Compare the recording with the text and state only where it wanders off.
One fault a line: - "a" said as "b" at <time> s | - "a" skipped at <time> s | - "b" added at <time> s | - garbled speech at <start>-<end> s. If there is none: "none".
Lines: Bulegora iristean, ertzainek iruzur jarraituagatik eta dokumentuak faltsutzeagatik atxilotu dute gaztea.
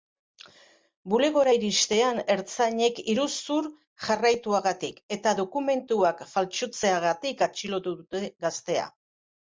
none